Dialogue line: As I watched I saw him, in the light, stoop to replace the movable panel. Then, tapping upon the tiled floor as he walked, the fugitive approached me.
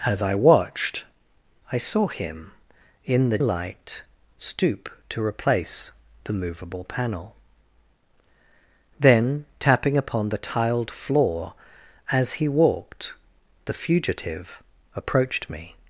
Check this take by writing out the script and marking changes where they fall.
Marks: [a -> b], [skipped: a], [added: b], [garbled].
As I watched I saw him, in the light, stoop to replace the movable panel. Then, tapping upon the tiled floor as he walked, the fugitive approached me.